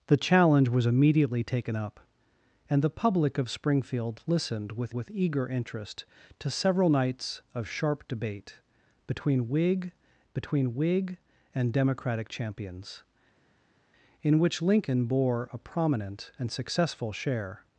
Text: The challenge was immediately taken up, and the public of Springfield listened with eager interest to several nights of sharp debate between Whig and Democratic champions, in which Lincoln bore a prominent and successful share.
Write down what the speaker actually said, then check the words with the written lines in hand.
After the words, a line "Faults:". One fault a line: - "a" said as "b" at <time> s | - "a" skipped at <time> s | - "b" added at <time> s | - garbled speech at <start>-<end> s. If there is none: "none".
The challenge was immediately taken up, and the public of Springfield listened with with eager interest to several nights of sharp debate between Whig between Whig and Democratic champions, in which Lincoln bore a prominent and successful share.
Faults:
- "with" added at 4.9 s
- "between Whig" added at 10.3 s